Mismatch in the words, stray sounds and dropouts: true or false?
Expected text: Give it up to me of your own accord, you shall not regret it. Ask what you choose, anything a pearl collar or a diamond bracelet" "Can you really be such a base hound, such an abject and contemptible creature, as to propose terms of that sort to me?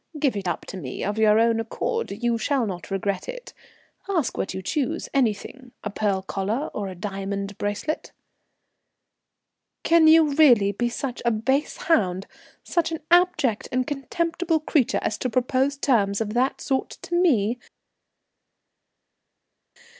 false